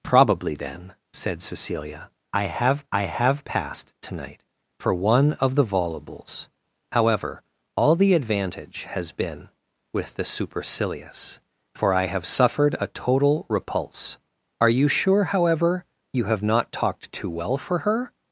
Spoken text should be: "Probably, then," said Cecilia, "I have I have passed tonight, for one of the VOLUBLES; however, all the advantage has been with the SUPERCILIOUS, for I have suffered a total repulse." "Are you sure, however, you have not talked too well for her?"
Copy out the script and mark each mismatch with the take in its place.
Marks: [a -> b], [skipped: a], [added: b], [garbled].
"Probably, then," said Cecilia, "I have I have passed tonight, for one of the VOLUBLES; however, all the advantage has been with the SUPERCILIOUS, for I have suffered a total repulse." "Are you sure, however, you have not talked too well for her?"